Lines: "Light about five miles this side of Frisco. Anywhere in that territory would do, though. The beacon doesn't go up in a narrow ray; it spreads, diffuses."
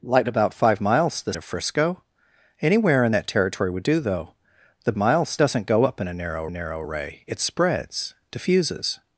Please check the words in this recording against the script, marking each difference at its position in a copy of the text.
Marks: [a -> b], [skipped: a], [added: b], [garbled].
"Light about five miles this [skipped: side] of Frisco. Anywhere in that territory would do, though. The [beacon -> miles] doesn't go up in a narrow [added: narrow] ray; it spreads, diffuses."